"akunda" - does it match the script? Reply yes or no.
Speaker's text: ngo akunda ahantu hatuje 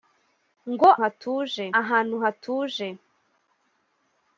no